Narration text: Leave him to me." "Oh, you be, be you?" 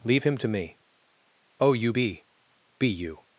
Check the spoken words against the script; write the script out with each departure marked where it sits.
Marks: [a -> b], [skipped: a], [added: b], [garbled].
Leave him to me." "Oh, you be, be you?"